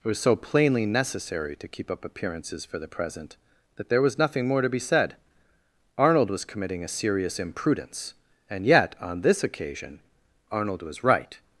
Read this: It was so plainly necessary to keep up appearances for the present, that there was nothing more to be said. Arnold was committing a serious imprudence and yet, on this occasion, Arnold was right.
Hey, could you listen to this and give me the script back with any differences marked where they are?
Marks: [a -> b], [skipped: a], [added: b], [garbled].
It was so plainly necessary to keep up appearances for the present, that there was nothing more to be said. Arnold was committing a serious imprudence and yet, on this occasion, Arnold was right.